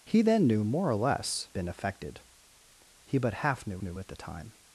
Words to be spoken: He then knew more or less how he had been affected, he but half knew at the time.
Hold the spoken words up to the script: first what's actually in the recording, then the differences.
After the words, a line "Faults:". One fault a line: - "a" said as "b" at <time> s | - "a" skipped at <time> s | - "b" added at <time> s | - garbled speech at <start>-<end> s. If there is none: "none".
He then knew more or less been affected, he but half knew knew at the time.
Faults:
- "how he had" skipped at 1.5 s
- "knew" added at 3.8 s